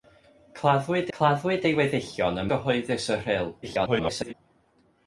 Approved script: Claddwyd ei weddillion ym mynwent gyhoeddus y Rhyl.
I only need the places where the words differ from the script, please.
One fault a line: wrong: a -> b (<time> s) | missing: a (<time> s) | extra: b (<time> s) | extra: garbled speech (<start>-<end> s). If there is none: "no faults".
extra: claddwyd (1.2 s)
missing: mynwent (2.5 s)
extra: garbled speech (3.6-4.3 s)